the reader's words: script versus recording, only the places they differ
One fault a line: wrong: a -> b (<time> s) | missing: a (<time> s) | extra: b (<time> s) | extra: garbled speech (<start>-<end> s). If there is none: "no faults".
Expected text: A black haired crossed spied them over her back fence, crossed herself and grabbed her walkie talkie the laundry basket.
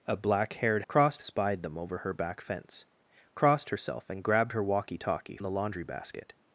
no faults